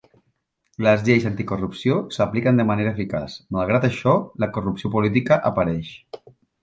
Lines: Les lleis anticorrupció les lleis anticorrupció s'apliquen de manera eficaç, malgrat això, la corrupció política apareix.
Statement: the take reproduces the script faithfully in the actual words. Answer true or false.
false